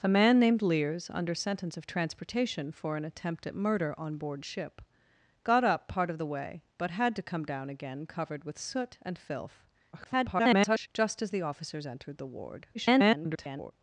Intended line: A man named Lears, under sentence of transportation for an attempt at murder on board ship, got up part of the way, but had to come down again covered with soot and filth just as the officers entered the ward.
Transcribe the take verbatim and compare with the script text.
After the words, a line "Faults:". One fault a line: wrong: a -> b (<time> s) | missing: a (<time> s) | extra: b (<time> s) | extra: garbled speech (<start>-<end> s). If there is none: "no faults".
A man named Lears, under sentence of transportation for an attempt at murder on board ship, got up part of the way, but had to come down again covered with soot and filth [garbled] just as the officers entered the ward. [garbled]
Faults:
extra: garbled speech (9.9-10.9 s)
extra: garbled speech (12.7-13.7 s)